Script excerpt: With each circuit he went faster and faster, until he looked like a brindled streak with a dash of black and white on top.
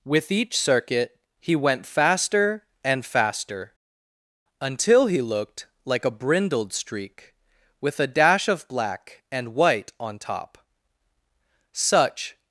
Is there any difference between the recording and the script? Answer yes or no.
yes